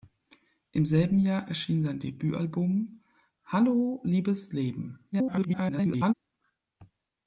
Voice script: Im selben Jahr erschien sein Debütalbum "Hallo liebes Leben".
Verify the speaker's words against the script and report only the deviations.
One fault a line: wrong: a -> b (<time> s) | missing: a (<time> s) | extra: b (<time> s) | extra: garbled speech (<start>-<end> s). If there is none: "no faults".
extra: garbled speech (5.1-6.1 s)